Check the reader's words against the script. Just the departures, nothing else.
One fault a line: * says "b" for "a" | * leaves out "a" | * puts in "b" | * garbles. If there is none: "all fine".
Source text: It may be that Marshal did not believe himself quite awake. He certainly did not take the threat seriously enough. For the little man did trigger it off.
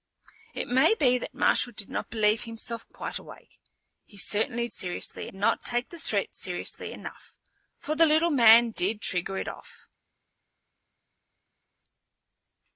* says "seriously" for "did"